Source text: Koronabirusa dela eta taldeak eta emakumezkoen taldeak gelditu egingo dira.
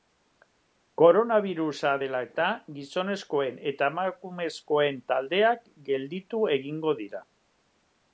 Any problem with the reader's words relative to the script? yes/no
yes